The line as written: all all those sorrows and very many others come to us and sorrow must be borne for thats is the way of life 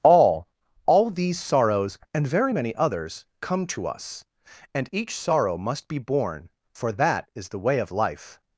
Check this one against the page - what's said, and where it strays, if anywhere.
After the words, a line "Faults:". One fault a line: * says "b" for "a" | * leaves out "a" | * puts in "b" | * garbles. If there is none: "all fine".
all all these sorrows and very many others come to us and each sorrow must be borne for that is the way of life
Faults:
* says "these" for "those"
* puts in "each"
* says "that" for "thats"